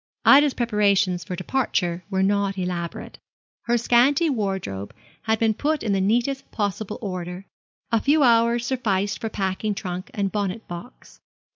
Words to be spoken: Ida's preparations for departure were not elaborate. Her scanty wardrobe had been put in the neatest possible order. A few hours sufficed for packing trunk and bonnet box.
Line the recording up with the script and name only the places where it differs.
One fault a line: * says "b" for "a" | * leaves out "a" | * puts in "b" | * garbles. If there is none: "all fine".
all fine